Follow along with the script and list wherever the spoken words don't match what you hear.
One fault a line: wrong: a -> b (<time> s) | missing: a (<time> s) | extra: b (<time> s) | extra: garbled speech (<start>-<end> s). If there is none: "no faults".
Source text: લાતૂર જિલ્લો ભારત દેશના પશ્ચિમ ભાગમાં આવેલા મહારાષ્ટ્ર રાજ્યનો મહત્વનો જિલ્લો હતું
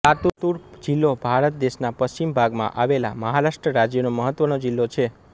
wrong: હતું -> છે (4.9 s)